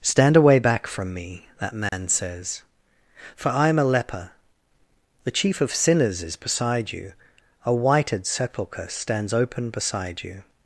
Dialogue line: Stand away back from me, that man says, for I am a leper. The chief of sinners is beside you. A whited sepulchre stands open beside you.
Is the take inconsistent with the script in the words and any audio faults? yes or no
yes